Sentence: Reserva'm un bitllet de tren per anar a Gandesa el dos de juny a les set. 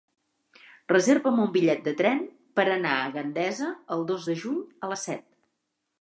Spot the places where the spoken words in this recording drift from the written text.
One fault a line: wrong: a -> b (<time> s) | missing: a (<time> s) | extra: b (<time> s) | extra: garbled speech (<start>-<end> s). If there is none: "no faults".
no faults